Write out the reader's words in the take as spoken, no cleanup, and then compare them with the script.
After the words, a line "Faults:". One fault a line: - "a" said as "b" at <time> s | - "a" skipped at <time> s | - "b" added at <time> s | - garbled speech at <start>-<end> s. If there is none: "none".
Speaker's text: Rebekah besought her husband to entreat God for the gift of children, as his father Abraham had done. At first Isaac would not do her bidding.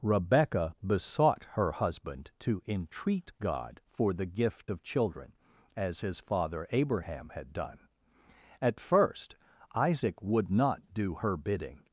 Rebekah besought her husband to entreat God for the gift of children, as his father Abraham had done. At first Isaac would not do her bidding.
Faults:
none